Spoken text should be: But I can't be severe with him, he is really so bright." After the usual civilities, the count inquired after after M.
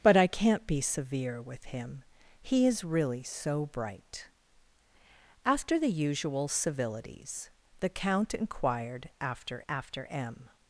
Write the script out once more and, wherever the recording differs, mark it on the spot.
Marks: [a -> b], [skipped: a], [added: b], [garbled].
But I can't be severe with him, he is really so bright." After the usual civilities, the count inquired after after M.